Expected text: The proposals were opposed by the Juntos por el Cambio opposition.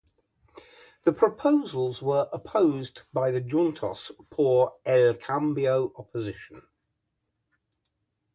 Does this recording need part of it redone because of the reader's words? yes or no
no